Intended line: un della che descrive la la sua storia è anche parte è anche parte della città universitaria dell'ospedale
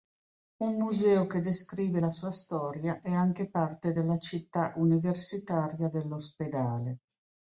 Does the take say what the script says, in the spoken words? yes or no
no